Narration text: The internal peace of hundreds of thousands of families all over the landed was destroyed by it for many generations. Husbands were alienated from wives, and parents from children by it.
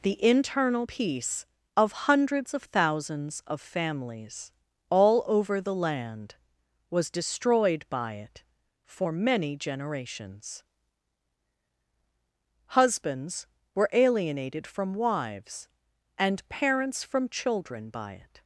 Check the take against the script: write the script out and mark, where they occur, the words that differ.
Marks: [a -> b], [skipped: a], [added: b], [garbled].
The internal peace of hundreds of thousands of families all over the [landed -> land] was destroyed by it for many generations. Husbands were alienated from wives, and parents from children by it.